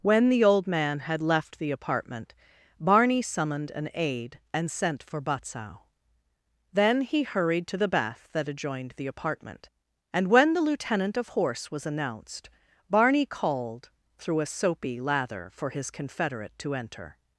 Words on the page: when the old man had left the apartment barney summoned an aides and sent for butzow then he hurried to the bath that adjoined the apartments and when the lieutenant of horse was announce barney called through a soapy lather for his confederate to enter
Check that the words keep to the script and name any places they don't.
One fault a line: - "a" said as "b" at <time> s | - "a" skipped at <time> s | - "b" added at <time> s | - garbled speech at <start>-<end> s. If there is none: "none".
- "aides" said as "aide" at 3.9 s
- "apartments" said as "apartment" at 9.1 s
- "announce" said as "announced" at 11.8 s